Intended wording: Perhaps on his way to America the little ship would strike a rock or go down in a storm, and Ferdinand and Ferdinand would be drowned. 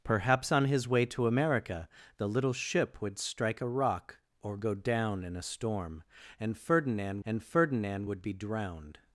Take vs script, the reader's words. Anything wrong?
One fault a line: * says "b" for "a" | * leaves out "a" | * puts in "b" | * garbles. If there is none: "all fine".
all fine